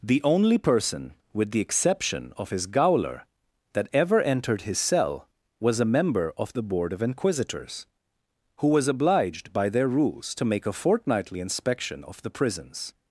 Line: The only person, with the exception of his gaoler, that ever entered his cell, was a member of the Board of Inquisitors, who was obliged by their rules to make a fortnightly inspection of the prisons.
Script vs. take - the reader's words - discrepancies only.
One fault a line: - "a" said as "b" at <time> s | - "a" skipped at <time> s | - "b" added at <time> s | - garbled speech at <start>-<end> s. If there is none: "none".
none